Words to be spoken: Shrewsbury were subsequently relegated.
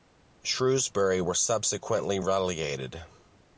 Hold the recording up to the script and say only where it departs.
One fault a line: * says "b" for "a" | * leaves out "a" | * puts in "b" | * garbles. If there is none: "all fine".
all fine